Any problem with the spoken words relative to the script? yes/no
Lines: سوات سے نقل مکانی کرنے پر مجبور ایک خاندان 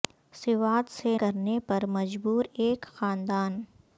yes